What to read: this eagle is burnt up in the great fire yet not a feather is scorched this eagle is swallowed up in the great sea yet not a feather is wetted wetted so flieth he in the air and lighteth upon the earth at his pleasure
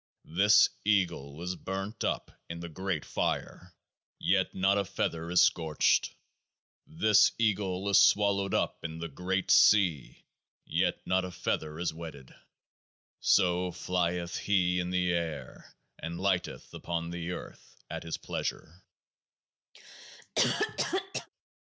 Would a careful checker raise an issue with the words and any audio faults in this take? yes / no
yes